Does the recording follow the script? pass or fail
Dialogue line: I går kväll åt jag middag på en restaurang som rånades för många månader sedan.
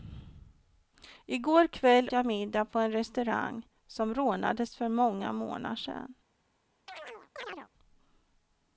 fail